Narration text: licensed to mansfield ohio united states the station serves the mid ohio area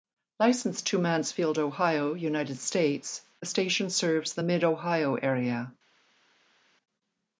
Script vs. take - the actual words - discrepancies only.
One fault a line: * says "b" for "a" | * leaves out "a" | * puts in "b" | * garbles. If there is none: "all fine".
all fine